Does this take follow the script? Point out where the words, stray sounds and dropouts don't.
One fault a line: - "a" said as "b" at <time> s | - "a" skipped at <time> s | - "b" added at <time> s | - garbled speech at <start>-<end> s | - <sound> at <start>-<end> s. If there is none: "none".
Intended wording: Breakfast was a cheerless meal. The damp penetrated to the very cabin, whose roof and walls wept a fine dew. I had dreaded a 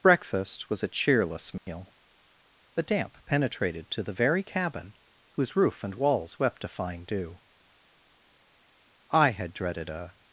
- dropout at 1.6-1.7 s